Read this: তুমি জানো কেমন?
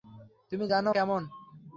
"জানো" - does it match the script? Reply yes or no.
yes